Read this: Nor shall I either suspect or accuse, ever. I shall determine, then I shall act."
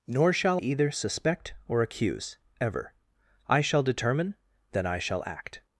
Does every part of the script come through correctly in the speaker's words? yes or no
no